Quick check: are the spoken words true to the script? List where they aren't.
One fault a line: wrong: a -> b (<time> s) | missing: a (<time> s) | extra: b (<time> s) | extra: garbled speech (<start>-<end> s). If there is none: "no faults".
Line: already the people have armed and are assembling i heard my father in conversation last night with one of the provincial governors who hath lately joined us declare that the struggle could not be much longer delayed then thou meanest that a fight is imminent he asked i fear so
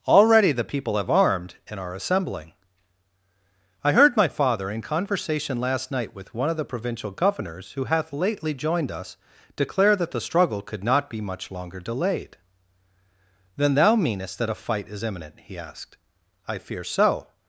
no faults